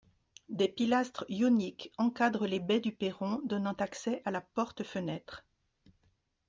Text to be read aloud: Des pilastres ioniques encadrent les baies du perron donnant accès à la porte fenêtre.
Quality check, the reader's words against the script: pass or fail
pass